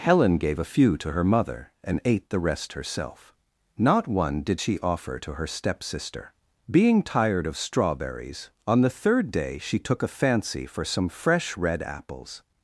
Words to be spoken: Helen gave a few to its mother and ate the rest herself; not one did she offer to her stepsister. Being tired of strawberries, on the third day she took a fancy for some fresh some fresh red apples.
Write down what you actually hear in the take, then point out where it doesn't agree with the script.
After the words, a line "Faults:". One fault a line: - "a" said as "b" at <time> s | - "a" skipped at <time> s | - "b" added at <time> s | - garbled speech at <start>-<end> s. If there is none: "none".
Helen gave a few to her mother and ate the rest herself; not one did she offer to her stepsister. Being tired of strawberries, on the third day she took a fancy for some fresh red apples.
Faults:
- "its" said as "her" at 1.1 s
- "some fresh" skipped at 11.6 s